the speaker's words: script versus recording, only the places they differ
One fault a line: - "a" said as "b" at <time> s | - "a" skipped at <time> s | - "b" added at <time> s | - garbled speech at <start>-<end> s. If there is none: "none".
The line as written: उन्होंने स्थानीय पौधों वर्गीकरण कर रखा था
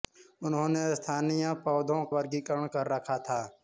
none